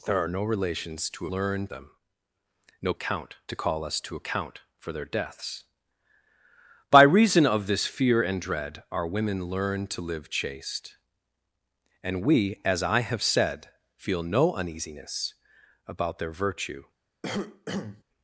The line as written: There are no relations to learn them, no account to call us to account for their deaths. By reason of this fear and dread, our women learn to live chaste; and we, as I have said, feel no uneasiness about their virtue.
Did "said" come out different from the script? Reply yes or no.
no